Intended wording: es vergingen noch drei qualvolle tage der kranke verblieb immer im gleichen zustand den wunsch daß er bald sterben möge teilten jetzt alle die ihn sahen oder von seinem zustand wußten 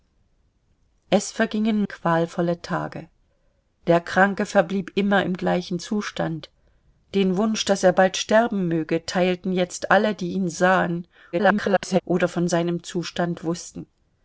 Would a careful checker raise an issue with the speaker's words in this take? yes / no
yes